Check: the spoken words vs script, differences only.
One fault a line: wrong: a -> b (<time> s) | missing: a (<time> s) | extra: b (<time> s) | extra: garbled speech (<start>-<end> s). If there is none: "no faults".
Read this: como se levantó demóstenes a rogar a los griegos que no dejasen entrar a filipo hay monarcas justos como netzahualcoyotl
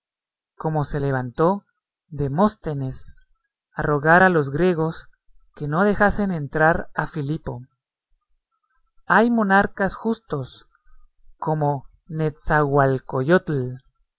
no faults